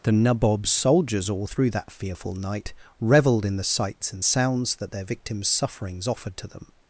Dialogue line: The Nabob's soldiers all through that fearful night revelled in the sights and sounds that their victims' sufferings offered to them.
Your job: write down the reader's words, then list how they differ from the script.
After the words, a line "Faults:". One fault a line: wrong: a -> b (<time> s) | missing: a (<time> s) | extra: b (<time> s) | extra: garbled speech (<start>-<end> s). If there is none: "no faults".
The Nabob's soldiers all through that fearful night revelled in the sights and sounds that their victims' sufferings offered to them.
Faults:
no faults